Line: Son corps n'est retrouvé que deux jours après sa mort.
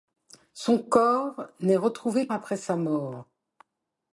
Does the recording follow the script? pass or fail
fail